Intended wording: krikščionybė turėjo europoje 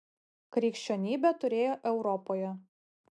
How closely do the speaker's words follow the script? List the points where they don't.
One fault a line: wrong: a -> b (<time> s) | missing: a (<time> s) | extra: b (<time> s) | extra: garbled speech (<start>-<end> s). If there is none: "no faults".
no faults